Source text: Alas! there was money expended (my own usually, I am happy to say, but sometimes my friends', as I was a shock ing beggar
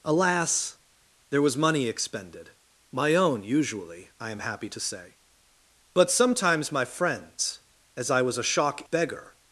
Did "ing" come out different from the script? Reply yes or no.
yes